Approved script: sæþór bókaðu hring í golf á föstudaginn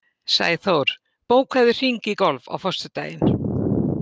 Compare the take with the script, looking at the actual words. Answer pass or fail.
pass